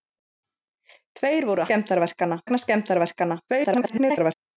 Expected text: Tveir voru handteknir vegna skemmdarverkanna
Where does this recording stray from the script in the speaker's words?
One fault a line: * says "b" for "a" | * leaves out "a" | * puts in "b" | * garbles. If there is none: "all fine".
* says "skemmdarverkanna" for "handteknir"
* garbles